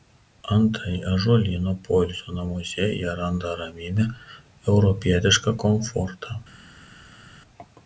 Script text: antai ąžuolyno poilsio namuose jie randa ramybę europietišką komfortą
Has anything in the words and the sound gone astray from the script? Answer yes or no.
no